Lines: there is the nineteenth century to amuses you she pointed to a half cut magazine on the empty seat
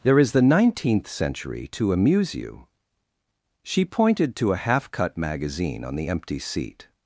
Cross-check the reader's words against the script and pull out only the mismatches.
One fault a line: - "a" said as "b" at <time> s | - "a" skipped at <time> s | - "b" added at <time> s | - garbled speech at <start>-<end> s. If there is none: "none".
- "amuses" said as "amuse" at 1.9 s